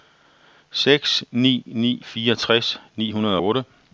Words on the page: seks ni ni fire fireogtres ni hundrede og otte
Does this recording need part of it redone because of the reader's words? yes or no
yes